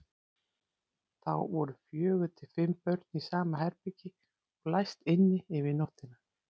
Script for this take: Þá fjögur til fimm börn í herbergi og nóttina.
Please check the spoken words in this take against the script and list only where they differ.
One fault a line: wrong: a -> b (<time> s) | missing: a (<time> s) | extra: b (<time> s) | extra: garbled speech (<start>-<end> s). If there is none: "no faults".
extra: voru (1.5 s)
extra: sama (3.3 s)
extra: læst inni yfir (4.8 s)